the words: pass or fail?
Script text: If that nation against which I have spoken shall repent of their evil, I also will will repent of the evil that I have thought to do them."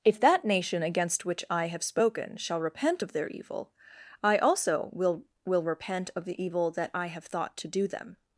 pass